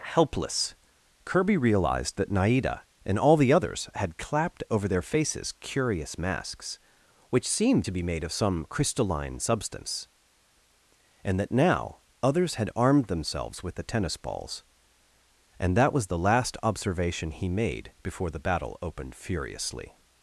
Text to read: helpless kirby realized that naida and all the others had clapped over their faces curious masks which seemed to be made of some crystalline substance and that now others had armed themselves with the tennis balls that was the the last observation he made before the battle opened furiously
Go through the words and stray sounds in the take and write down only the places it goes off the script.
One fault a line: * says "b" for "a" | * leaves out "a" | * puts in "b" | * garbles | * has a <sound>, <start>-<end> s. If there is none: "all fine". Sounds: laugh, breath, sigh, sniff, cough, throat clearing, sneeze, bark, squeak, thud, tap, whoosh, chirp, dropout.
* puts in "and"
* leaves out "the"